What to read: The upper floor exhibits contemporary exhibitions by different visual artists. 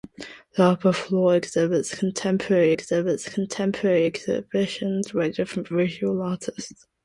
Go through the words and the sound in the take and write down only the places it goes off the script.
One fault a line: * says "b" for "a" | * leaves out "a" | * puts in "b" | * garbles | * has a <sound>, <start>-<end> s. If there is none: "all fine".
* puts in "exhibits contemporary"